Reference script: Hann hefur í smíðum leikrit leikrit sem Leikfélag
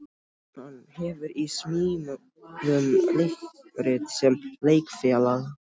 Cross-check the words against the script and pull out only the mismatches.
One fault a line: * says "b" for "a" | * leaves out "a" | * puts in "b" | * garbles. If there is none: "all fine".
* leaves out "leikrit"